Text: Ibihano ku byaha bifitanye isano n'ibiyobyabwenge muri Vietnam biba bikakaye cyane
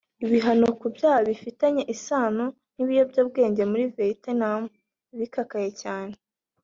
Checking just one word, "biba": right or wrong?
wrong